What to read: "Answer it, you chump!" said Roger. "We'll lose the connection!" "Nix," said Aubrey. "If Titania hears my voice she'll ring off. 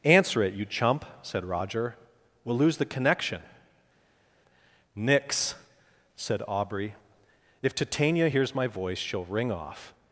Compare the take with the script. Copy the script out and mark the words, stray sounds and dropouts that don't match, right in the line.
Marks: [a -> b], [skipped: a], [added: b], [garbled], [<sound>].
"Answer it, you chump!" said Roger. "We'll lose the connection!" "Nix," said Aubrey. "If Titania hears my voice she'll ring off.